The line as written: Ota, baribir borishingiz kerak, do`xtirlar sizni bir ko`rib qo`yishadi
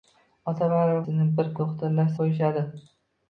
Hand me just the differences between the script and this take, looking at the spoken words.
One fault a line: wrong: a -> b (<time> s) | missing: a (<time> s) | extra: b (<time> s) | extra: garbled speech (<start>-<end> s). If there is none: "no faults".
missing: borishingiz kerak do`xtirlar (1.0 s)
wrong: ko`rib -> do`xtirlar (1.6 s)